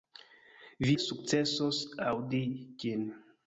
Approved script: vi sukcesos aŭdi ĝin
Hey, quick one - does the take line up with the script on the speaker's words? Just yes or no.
yes